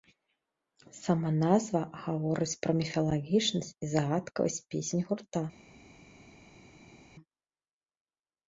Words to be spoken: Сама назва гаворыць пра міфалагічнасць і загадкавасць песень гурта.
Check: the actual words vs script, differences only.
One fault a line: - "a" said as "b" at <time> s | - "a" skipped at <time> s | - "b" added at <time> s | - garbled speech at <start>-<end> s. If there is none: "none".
none